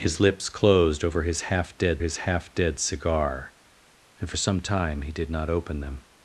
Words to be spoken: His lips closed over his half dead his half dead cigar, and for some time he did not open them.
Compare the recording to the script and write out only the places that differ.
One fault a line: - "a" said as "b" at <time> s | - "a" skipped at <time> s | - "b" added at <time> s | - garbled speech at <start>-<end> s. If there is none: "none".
none